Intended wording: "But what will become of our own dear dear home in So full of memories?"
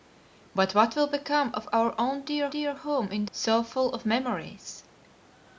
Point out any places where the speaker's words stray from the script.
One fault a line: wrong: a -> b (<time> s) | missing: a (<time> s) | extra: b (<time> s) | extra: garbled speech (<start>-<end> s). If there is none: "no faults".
no faults